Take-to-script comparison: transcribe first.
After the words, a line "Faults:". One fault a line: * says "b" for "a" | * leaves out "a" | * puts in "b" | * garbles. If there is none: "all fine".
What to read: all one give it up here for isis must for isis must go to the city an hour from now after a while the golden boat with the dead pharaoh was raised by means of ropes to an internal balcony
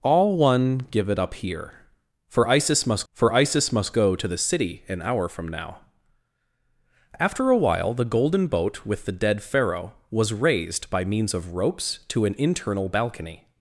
all one give it up here for isis must for isis must go to the city an hour from now after a while the golden boat with the dead pharaoh was raised by means of ropes to an internal balcony
Faults:
all fine